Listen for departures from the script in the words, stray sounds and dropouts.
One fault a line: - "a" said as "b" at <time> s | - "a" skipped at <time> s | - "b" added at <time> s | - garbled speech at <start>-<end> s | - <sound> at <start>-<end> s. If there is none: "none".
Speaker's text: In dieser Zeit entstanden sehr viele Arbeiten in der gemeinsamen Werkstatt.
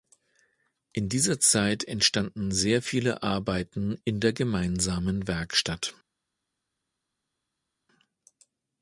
none